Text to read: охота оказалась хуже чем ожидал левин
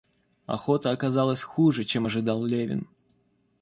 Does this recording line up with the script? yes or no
yes